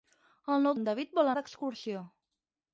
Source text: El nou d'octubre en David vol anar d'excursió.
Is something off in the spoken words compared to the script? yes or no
yes